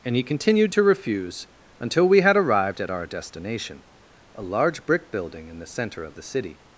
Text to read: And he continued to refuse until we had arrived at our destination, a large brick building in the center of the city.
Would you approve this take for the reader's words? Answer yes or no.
yes